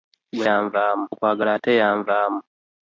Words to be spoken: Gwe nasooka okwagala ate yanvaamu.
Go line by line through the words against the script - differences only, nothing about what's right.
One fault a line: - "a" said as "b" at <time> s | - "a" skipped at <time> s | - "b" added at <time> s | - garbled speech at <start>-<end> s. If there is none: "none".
- "nasooka" said as "yanvaamu" at 0.5 s